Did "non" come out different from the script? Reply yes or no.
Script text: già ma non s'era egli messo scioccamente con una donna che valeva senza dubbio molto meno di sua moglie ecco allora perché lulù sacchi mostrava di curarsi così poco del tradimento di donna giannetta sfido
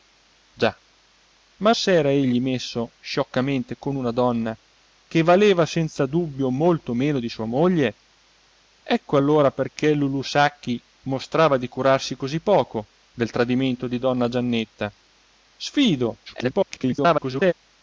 yes